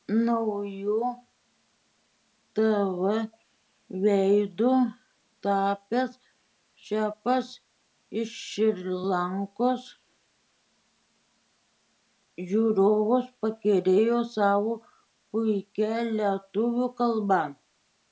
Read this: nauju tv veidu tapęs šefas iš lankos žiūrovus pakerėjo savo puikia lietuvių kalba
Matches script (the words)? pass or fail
fail